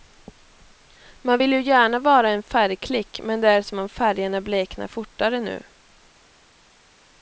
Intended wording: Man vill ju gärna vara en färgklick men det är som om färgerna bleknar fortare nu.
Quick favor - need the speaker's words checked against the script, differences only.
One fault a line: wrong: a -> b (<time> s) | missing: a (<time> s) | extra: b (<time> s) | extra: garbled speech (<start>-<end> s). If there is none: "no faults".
no faults